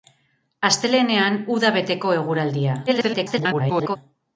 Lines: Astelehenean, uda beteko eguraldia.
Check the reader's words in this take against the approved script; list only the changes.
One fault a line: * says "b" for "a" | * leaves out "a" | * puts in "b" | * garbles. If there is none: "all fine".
* garbles